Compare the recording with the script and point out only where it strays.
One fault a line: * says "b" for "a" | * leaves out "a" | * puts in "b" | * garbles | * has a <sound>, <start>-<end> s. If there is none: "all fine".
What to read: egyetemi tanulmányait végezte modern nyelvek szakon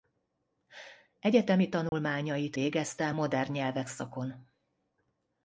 * has a dropout, 1.9-1.9 s